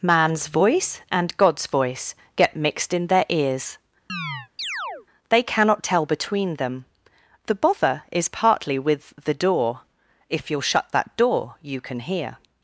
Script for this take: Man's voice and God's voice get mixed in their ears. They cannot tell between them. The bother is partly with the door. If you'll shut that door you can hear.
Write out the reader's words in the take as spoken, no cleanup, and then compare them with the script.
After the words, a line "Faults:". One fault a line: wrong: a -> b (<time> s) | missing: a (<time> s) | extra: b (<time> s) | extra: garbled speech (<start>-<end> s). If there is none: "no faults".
Man's voice and God's voice get mixed in their ears. They cannot tell between them. The bother is partly with the door. If you'll shut that door you can hear.
Faults:
no faults